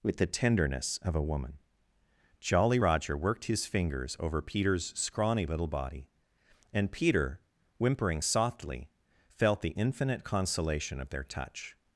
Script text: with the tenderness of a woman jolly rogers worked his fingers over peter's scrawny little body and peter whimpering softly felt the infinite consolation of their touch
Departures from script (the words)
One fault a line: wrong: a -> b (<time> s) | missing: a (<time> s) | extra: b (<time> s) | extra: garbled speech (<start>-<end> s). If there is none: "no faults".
wrong: rogers -> roger (2.8 s)